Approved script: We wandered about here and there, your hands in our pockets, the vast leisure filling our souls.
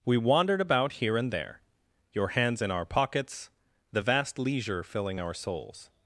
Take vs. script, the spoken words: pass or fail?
pass